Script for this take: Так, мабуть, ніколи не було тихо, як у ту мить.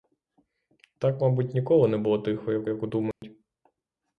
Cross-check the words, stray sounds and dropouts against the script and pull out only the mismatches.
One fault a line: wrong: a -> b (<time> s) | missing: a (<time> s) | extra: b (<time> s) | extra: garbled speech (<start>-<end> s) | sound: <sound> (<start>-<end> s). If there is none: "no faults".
extra: як (2.7 s)
sound: dropout (3.1-3.2 s)